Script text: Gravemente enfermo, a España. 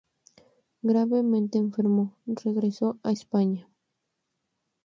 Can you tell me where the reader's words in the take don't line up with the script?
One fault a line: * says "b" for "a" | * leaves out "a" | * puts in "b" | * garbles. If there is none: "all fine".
* puts in "regresó"